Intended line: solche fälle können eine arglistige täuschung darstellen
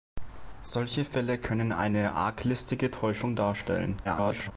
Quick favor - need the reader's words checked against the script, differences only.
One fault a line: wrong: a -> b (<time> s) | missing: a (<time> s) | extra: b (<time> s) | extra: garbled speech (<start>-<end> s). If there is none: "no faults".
extra: garbled speech (4.0-4.5 s)